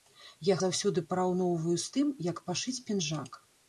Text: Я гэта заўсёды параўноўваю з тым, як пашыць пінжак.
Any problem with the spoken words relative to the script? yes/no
yes